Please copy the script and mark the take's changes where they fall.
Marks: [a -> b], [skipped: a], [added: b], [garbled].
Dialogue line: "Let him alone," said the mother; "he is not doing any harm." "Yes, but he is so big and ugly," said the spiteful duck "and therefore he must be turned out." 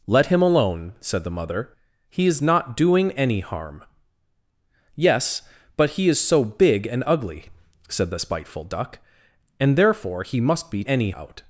"Let him alone," said the mother; "he is not doing any harm." "Yes, but he is so big and ugly," said the spiteful duck "and therefore he must be [turned -> any] out."